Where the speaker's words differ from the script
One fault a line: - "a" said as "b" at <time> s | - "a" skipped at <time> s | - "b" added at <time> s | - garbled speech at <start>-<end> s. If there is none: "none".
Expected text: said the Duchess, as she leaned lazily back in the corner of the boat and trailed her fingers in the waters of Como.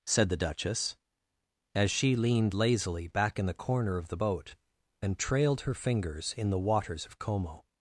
none